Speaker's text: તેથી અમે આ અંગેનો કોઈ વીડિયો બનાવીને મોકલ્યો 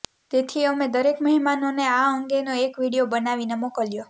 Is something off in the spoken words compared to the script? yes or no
yes